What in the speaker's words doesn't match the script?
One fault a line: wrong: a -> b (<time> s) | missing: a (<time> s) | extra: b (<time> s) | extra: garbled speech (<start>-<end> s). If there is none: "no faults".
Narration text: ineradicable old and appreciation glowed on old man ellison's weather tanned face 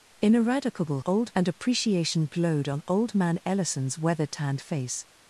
no faults